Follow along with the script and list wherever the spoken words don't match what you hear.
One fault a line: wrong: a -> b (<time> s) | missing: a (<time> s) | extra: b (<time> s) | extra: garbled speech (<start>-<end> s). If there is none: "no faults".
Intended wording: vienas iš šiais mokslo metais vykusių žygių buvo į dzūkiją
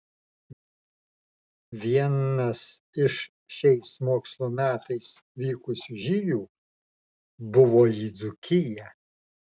no faults